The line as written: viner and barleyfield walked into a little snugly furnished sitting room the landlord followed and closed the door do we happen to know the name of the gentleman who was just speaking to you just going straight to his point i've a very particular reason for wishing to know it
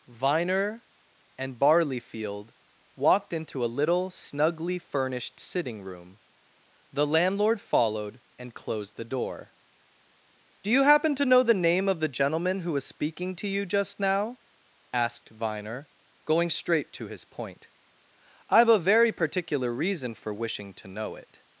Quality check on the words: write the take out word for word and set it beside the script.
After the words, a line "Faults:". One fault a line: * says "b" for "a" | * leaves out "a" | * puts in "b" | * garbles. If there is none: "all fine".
viner and barleyfield walked into a little snugly furnished sitting room the landlord followed and closed the door do you happen to know the name of the gentleman who was speaking to you just now asked viner going straight to his point i've a very particular reason for wishing to know it
Faults:
* says "you" for "we"
* leaves out "just"
* puts in "now asked viner"